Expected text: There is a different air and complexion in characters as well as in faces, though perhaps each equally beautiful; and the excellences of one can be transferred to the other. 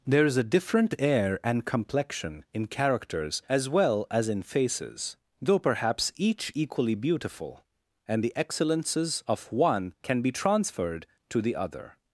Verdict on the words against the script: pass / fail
pass